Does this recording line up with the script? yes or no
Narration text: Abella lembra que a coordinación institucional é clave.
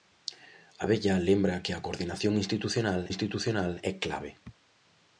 no